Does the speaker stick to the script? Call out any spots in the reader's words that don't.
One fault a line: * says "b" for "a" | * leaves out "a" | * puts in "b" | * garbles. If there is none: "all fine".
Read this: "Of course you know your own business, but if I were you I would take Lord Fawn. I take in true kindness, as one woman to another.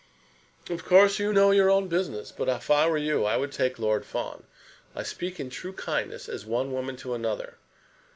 * says "speak" for "take"